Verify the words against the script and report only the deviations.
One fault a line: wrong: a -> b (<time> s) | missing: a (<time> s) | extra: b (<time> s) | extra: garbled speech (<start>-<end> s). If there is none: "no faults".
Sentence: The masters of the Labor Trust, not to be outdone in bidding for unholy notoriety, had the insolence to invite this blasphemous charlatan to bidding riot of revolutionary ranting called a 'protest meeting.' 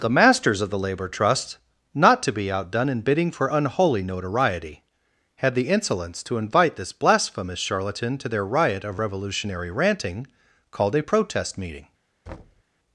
wrong: bidding -> their (8.3 s)